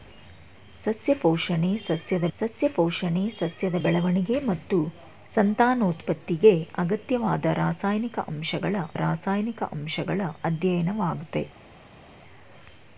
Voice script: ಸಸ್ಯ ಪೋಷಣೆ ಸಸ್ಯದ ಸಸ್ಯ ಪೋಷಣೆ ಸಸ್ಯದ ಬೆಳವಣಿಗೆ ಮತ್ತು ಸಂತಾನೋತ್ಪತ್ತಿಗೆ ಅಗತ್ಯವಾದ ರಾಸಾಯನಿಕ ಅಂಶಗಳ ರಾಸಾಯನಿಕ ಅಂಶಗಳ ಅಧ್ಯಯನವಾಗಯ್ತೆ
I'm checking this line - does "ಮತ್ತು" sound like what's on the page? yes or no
yes